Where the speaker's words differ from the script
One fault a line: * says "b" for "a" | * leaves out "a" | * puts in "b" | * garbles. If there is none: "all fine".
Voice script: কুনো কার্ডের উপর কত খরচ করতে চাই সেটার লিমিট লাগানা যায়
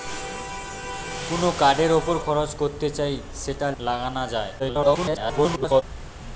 * leaves out "কত"
* leaves out "লিমিট"
* garbles